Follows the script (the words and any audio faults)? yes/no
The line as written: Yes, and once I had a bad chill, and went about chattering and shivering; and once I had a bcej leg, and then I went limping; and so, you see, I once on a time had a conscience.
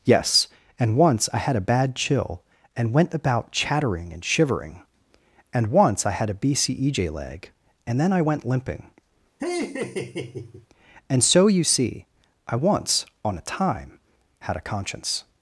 no